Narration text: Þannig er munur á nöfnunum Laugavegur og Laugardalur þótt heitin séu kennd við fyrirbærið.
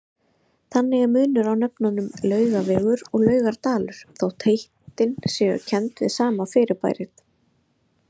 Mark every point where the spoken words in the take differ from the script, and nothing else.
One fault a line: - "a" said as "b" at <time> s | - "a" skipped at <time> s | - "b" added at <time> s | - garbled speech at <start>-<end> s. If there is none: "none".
- "sama" added at 6.2 s